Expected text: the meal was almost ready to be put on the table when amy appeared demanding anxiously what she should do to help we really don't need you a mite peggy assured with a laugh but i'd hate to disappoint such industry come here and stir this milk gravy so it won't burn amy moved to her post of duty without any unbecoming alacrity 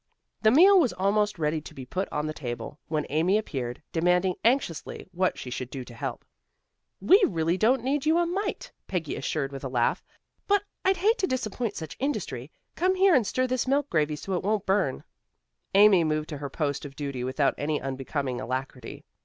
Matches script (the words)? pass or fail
pass